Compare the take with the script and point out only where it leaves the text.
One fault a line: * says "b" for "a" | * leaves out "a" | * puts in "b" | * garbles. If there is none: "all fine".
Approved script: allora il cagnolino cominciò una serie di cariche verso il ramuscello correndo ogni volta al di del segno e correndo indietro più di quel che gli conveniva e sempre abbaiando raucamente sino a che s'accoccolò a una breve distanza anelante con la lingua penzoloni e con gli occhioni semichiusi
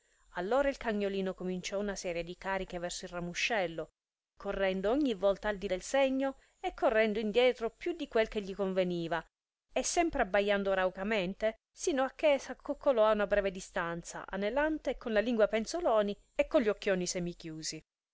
all fine